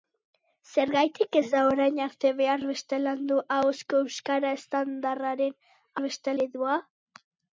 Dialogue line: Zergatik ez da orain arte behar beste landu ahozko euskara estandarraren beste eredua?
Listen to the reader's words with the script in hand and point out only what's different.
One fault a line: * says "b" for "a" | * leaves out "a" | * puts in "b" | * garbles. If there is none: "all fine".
all fine